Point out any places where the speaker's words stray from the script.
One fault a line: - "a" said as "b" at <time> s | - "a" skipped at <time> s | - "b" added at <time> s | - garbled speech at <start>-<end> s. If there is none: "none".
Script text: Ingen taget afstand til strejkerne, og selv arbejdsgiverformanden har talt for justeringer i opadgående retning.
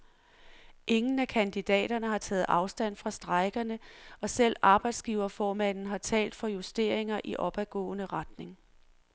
- "af kandidaterne har" added at 1.2 s
- "til" said as "fra" at 3.0 s